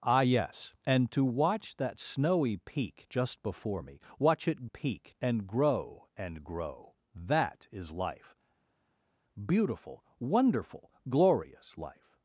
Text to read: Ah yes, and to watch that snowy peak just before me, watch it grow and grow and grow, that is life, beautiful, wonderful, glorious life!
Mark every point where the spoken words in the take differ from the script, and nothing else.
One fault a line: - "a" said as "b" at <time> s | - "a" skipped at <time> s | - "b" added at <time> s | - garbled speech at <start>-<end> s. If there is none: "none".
- "grow" said as "peak" at 4.6 s